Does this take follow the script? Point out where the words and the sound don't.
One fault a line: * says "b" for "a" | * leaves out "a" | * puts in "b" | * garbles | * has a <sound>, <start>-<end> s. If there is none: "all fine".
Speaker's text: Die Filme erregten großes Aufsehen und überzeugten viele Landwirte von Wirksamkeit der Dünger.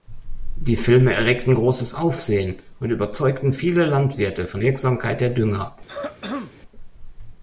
* has a throat clearing, 5.9-6.5 s